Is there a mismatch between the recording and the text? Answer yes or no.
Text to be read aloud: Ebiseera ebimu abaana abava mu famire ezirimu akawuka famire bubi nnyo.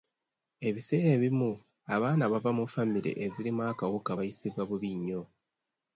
yes